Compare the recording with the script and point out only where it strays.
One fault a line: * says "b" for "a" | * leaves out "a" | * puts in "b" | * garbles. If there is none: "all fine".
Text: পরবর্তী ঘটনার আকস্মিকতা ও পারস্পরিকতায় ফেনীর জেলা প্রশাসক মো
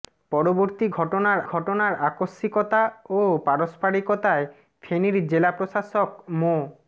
* puts in "ঘটনার"